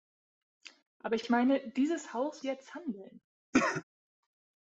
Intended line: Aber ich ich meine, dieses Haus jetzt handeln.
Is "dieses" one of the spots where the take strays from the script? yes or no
no